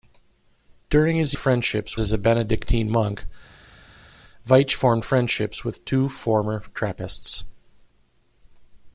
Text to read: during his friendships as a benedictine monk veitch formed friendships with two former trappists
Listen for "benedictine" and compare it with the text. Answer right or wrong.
right